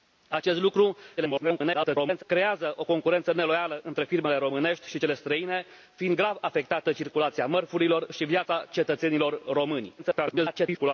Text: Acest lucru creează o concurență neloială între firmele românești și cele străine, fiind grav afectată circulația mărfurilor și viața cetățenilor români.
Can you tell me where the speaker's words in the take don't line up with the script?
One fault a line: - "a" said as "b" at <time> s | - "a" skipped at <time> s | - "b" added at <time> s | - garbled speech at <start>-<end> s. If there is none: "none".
- garbled speech at 1.2-2.2 s
- garbled speech at 10.0-10.9 s